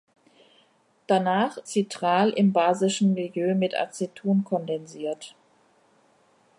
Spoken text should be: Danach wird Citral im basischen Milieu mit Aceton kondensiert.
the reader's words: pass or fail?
fail